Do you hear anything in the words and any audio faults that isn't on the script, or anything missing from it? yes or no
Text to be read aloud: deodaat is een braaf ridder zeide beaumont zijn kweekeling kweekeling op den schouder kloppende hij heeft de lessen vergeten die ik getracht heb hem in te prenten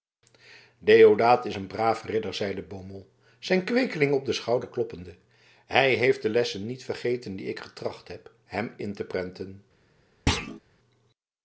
yes